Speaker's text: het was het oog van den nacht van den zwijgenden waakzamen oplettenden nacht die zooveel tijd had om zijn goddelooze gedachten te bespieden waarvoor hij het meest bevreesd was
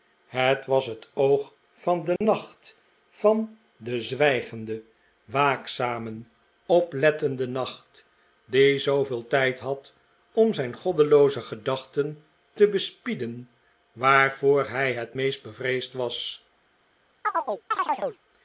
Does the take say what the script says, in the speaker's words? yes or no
yes